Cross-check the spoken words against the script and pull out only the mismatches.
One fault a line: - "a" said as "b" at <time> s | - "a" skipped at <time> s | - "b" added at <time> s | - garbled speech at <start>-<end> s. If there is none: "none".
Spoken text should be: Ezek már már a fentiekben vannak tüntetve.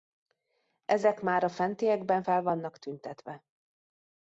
- "már" skipped at 1.4 s
- "fel" added at 2.2 s